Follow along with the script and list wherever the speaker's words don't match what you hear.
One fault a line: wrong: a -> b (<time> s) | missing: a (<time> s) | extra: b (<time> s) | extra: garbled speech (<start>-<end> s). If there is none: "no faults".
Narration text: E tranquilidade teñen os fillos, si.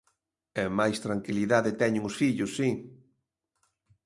extra: máis (0.8 s)